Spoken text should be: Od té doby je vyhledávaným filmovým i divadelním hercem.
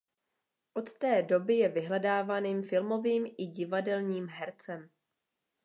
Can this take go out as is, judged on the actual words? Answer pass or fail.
pass